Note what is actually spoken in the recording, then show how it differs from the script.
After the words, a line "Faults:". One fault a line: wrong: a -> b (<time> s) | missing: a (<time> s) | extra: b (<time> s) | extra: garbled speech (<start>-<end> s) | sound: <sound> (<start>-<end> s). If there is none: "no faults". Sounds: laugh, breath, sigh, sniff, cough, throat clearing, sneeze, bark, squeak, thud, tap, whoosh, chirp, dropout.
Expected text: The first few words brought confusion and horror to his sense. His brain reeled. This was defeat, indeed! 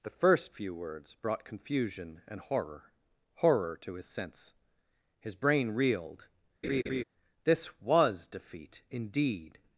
The first few words brought confusion and horror horror to his sense. His brain reeled. This was defeat, indeed!
Faults:
extra: horror (3.4 s)
sound: laugh (6.6-7.0 s)